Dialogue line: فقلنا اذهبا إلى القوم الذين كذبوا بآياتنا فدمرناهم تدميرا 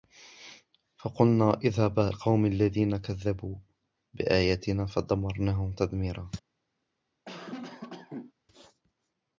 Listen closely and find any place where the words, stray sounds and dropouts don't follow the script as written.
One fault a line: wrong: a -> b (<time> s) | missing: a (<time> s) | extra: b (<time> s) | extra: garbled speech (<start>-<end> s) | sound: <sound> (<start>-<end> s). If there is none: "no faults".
missing: إلى (2.1 s)
sound: cough (7.3-8.3 s)